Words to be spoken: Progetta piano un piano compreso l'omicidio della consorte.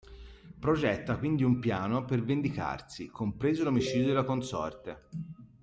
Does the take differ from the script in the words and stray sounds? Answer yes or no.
yes